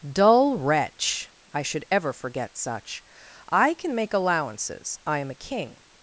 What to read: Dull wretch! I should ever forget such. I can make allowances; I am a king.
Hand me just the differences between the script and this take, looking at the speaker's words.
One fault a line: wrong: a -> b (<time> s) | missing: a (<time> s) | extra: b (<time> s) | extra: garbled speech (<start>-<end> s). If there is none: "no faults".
no faults